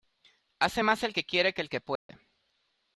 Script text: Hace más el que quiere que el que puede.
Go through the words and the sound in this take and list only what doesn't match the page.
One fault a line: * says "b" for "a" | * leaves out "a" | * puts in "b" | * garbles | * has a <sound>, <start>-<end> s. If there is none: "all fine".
* has a dropout, 2.0-2.1 s